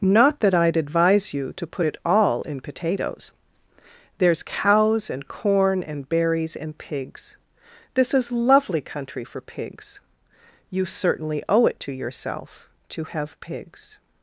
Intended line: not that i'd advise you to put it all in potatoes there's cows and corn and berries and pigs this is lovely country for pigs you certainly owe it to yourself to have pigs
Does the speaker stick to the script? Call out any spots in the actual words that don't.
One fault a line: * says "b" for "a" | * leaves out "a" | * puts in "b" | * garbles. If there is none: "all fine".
all fine